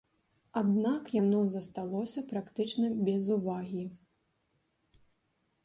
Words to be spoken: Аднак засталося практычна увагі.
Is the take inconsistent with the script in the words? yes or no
yes